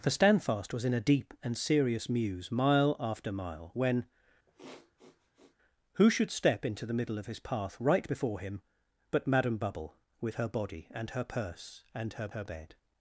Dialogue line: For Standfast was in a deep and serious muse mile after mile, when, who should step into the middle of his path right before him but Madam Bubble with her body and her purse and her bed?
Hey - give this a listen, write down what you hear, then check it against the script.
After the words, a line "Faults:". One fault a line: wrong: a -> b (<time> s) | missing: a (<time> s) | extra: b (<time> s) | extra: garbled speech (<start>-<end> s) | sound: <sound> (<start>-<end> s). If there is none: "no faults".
For Standfast was in a deep and serious muse mile after mile, when, who should step into the middle of his path right before him but Madam Bubble with her body and her purse and her her bed?
Faults:
sound: sniff (4.5-5.6 s)
extra: her (12.3 s)